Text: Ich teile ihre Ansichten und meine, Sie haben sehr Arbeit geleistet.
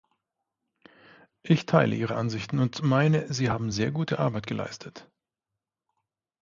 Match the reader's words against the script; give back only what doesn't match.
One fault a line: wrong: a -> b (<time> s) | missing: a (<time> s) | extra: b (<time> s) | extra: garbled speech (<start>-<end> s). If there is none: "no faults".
extra: gute (3.9 s)